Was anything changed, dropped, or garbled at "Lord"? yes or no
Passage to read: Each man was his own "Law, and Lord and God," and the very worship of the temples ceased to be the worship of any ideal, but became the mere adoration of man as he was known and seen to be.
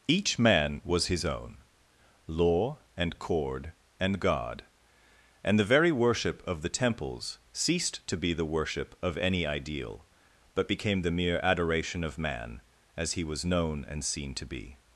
yes